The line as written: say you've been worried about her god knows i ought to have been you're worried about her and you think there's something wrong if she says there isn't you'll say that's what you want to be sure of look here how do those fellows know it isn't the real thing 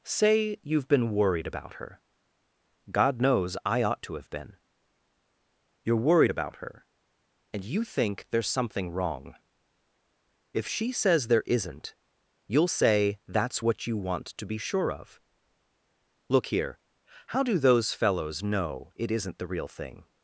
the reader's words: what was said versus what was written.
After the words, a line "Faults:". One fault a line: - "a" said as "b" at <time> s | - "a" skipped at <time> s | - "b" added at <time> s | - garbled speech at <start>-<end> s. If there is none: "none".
say you've been worried about her god knows i ought to have been you're worried about her and you think there's something wrong if she says there isn't you'll say that's what you want to be sure of look here how do those fellows know it isn't the real thing
Faults:
none